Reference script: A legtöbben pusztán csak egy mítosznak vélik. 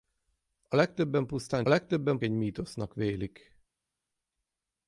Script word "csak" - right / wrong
wrong